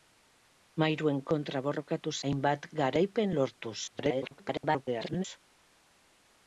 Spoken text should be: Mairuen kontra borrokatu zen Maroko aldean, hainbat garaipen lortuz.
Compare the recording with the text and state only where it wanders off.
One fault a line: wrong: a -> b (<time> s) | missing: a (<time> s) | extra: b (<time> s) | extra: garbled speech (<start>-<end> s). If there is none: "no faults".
missing: zen Maroko aldean (2.1 s)
extra: garbled speech (3.9-5.2 s)